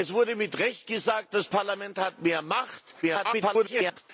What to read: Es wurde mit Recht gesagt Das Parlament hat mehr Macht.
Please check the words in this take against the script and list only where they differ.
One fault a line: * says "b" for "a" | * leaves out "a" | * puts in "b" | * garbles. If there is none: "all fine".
* garbles